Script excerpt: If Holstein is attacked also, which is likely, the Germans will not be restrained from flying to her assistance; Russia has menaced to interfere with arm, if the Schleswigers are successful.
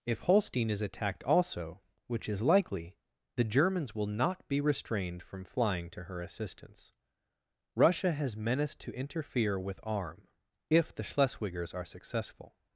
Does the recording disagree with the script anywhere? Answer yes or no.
no